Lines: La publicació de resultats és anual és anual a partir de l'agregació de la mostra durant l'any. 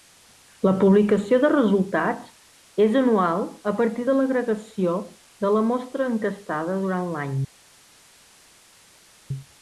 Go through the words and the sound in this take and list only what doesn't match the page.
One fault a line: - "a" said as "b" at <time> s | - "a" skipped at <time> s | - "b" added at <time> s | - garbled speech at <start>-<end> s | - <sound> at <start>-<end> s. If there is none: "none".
- "és anual" skipped at 3.4 s
- "enquestada" added at 6.1 s